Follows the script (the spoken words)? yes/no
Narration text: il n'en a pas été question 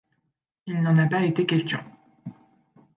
yes